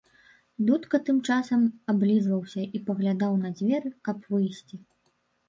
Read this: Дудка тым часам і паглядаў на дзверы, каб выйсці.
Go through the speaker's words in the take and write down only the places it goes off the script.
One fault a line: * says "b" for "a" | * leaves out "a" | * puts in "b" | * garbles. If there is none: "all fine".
* puts in "аблізваўся"